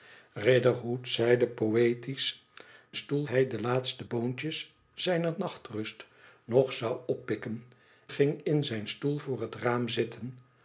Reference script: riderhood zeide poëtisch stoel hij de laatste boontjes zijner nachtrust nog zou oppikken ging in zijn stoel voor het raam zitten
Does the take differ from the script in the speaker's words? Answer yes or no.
no